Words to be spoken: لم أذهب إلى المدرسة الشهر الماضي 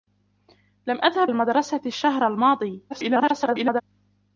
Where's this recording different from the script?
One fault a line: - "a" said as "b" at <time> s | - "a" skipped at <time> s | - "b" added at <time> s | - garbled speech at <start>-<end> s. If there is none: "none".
- "إلى" skipped at 1.3 s
- garbled speech at 2.9-3.8 s